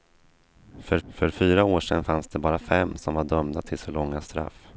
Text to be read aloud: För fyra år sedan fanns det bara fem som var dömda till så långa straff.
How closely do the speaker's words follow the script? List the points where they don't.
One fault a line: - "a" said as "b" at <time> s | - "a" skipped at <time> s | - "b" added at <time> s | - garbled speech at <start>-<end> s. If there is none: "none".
- "för" added at 1.1 s